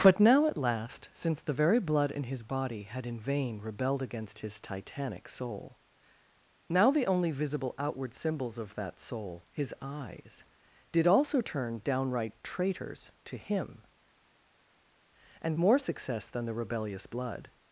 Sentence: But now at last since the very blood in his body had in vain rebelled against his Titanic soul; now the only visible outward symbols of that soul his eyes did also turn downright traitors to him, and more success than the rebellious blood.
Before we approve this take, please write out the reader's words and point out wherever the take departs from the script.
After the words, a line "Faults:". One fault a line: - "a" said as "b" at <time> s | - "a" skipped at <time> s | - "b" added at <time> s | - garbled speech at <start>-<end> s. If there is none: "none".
But now at last since the very blood in his body had in vain rebelled against his Titanic soul; now the only visible outward symbols of that soul his eyes did also turn downright traitors to him, and more success than the rebellious blood.
Faults:
none